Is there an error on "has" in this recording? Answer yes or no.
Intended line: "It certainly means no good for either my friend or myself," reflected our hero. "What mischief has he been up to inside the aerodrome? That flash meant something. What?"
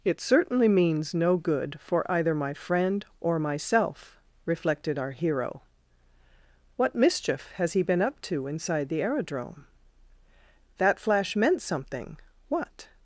no